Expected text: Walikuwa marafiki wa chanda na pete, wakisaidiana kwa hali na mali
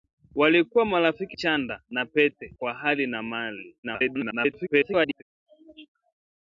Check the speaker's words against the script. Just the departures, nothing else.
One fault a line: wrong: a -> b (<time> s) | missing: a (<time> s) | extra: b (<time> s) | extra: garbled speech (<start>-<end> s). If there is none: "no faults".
missing: wa (1.4 s)
missing: wakisaidiana (2.5 s)
extra: garbled speech (3.8-5.2 s)